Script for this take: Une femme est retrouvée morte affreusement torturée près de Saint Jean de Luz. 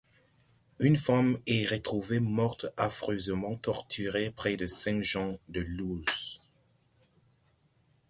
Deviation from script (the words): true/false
false